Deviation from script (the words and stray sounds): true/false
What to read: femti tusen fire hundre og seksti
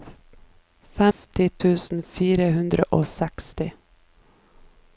true